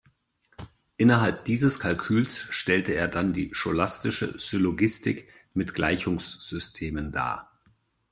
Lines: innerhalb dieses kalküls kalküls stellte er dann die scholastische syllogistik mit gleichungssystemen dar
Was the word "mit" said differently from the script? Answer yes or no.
no